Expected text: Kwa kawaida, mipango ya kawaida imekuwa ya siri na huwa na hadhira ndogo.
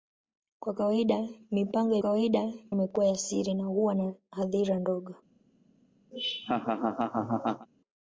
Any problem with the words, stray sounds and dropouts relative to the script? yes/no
yes